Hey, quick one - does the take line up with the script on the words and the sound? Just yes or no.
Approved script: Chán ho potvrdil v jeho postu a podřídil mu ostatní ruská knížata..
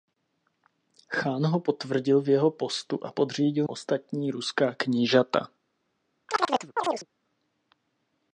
no